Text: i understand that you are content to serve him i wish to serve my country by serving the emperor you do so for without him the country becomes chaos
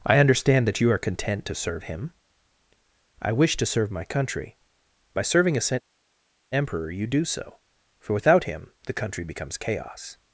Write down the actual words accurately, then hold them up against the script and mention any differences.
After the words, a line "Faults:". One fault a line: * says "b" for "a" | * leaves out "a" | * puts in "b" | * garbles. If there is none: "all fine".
i understand that you are content to serve him i wish to serve my country by serving a emperor you do so for without him the country becomes chaos
Faults:
* says "a" for "the"